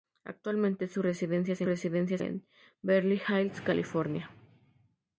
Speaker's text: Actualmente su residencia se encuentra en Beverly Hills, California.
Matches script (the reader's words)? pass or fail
fail